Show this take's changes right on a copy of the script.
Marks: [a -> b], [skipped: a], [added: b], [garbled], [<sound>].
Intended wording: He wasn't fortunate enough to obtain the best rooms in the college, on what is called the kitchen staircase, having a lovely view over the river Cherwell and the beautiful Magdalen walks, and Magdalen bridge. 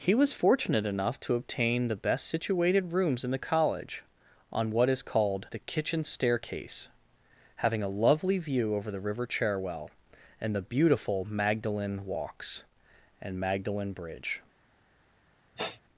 He [wasn't -> was] fortunate enough to obtain the best [added: situated] rooms in the college, on what is called the kitchen staircase, having a lovely view over the river Cherwell and the beautiful Magdalen walks, and Magdalen bridge. [sniff]